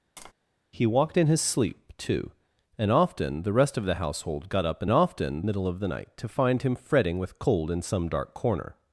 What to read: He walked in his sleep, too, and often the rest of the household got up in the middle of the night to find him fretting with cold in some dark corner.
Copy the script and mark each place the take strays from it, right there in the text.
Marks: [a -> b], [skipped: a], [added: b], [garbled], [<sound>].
[tap] He walked in his sleep, too, and often the rest of the household got up in [the -> often] middle of the night to find him fretting with cold in some dark corner.